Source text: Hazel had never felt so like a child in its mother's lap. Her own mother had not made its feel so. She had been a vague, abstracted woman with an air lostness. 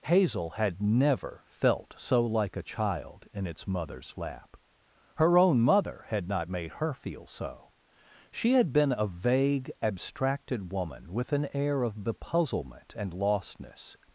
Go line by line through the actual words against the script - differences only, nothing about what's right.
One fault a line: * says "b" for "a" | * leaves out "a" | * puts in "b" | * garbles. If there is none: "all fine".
* says "her" for "its"
* puts in "of bepuzzlement and"